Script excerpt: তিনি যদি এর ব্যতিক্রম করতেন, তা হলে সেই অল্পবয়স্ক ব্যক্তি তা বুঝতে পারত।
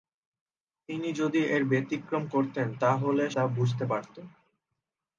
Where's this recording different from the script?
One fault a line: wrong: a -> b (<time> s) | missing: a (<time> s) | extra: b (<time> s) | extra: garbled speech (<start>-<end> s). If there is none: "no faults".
missing: সেই অল্পবয়স্ক ব্যক্তি (3.3 s)